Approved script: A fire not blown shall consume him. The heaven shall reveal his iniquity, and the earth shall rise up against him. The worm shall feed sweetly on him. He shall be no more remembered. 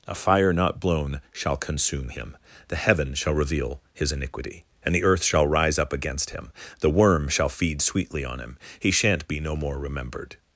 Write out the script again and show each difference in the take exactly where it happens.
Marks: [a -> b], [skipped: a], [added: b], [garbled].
A fire not blown shall consume him. The heaven shall reveal his iniquity, and the earth shall rise up against him. The worm shall feed sweetly on him. He [shall -> shan't] be no more remembered.